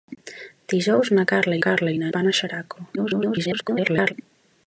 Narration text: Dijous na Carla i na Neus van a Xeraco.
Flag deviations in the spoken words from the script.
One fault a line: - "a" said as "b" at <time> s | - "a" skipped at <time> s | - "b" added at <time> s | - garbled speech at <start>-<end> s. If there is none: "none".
- "Carla" added at 1.7 s
- "Neus" skipped at 2.1 s
- garbled speech at 3.0-4.1 s